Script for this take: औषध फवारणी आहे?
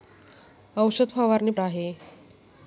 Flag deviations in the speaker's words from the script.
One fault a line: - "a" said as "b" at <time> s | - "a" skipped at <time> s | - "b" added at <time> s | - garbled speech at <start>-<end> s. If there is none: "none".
none